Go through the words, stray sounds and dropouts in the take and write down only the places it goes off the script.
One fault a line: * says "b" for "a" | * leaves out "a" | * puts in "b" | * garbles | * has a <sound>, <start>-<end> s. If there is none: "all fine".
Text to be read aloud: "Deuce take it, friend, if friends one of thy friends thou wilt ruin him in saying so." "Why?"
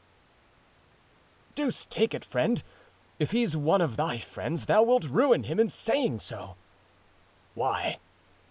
* says "he's" for "friends"